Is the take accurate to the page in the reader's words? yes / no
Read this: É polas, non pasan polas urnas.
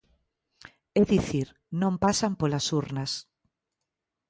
no